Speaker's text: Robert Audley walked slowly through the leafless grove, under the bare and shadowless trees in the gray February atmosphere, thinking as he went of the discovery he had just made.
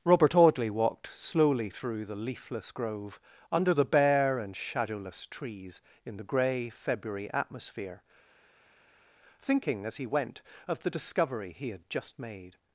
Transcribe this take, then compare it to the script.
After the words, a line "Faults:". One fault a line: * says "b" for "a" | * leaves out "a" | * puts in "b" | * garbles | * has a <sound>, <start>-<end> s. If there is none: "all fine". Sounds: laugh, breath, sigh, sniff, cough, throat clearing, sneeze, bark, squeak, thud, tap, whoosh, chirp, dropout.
Robert Audley walked slowly through the leafless grove, under the bare and shadowless trees in the gray February atmosphere, thinking as he went of the discovery he had just made.
Faults:
all fine